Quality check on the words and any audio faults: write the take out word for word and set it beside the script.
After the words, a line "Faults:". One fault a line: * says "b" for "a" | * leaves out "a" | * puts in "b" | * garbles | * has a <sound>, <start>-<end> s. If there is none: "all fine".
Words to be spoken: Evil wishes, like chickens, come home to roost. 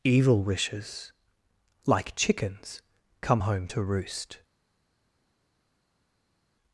Evil wishes, like chickens, come home to roost.
Faults:
all fine